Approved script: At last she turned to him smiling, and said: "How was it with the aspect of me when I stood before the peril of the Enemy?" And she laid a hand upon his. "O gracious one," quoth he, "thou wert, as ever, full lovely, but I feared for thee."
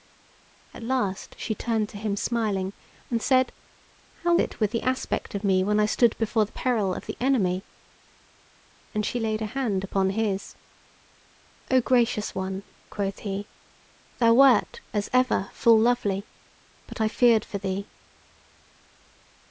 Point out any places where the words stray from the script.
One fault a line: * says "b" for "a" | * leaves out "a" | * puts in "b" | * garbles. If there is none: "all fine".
* leaves out "was"